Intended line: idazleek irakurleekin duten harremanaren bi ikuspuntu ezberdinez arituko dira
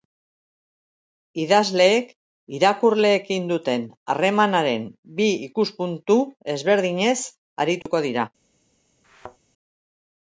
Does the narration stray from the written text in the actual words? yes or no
no